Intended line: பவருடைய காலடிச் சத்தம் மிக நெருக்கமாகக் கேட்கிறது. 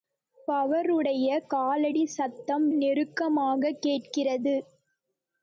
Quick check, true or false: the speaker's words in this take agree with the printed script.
false